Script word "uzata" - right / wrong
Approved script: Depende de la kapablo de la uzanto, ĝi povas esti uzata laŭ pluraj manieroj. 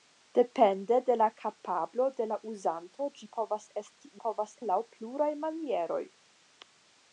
wrong